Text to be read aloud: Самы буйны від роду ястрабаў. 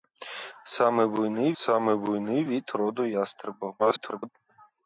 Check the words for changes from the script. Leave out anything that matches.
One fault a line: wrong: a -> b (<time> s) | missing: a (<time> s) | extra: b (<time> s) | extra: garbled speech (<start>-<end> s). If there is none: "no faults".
extra: самы буйны (1.6 s)
extra: garbled speech (3.8-4.3 s)